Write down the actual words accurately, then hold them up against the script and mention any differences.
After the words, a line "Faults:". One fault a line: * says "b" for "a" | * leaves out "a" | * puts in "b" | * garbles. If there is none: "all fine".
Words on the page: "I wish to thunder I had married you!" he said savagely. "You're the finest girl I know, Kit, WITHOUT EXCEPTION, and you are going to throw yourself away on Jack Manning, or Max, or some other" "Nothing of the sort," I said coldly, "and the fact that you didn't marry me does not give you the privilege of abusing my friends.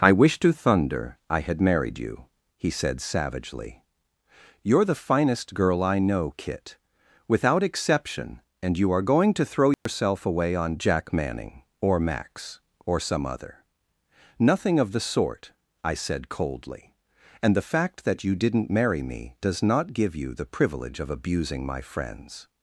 "I wish to thunder I had married you!" he said savagely. "You're the finest girl I know, Kit, WITHOUT EXCEPTION, and you are going to throw yourself away on Jack Manning, or Max, or some other" "Nothing of the sort," I said coldly, "and the fact that you didn't marry me does not give you the privilege of abusing my friends.
Faults:
all fine